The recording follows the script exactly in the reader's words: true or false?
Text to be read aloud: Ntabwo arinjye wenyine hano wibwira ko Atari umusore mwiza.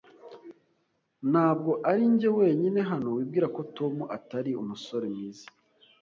false